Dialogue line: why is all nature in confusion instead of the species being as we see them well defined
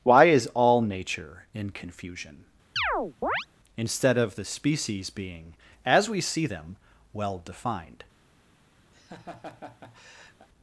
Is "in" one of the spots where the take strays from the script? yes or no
no